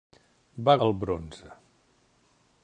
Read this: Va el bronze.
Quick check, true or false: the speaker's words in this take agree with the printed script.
true